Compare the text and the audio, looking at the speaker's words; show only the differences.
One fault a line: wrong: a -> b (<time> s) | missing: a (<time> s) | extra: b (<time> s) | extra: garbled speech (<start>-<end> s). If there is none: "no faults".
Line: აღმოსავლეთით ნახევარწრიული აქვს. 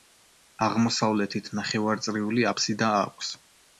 extra: აფსიდა (2.5 s)